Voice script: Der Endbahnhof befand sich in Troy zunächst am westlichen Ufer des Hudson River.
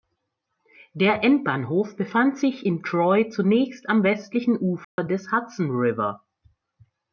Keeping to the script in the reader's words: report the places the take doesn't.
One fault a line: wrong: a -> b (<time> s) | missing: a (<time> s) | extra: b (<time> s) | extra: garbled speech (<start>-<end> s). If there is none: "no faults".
no faults